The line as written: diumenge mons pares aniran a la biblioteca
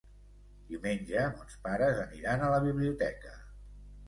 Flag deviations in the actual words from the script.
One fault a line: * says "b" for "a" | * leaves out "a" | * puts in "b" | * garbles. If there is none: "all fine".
all fine